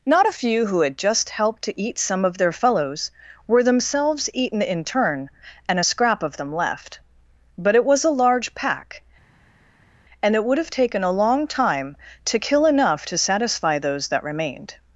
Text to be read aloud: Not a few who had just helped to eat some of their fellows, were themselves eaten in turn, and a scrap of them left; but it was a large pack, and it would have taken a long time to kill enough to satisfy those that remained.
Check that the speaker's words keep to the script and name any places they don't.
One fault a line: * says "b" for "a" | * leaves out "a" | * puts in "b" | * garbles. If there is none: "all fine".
all fine